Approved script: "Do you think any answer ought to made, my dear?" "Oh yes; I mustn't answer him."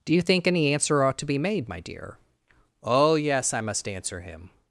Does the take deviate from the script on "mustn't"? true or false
true